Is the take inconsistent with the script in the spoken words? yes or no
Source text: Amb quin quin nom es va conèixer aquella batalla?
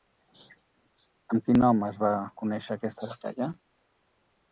yes